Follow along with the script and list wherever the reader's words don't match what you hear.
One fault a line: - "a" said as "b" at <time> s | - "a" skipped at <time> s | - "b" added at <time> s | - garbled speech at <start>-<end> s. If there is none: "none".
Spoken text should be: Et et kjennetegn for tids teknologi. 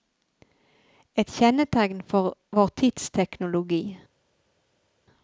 - "et" skipped at 1.3 s
- "vår" added at 2.5 s